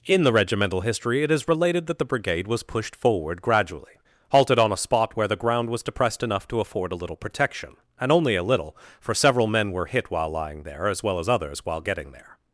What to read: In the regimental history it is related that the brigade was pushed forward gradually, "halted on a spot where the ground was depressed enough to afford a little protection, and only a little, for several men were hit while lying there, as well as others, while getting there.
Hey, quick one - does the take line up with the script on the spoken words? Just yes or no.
yes